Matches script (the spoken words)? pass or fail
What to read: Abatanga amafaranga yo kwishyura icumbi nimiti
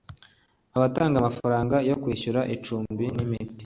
pass